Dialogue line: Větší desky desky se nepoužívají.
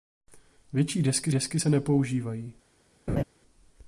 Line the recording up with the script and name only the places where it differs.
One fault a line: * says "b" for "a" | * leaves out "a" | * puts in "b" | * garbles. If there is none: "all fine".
all fine